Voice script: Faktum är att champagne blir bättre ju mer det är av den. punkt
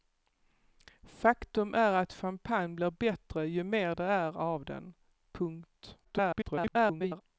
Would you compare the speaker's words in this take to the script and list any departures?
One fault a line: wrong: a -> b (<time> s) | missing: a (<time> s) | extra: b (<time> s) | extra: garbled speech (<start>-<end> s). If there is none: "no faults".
extra: garbled speech (6.0-7.2 s)